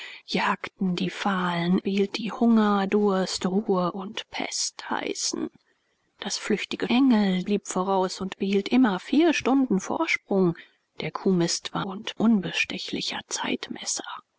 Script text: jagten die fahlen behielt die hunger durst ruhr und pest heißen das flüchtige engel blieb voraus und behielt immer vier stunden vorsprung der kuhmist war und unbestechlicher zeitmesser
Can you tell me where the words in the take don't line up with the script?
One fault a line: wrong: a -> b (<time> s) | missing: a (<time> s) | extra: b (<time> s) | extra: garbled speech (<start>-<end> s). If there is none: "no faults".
no faults